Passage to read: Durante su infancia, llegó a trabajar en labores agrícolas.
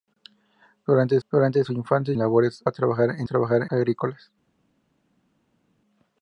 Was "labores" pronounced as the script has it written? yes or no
no